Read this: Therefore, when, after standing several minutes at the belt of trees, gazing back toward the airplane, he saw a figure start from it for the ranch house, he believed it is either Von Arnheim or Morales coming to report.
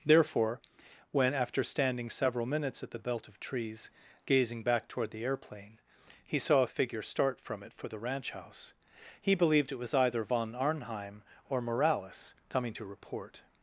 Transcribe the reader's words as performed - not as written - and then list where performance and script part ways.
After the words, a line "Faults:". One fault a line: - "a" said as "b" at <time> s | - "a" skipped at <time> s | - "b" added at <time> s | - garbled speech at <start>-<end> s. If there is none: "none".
Therefore, when, after standing several minutes at the belt of trees, gazing back toward the airplane, he saw a figure start from it for the ranch house, he believed it was either Von Arnheim or Morales coming to report.
Faults:
- "is" said as "was" at 9.8 s